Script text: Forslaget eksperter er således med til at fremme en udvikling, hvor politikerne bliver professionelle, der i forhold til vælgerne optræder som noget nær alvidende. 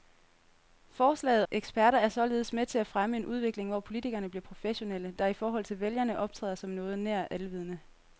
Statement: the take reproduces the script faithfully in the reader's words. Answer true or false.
true